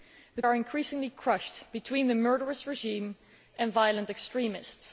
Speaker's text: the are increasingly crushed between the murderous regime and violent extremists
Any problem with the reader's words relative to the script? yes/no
no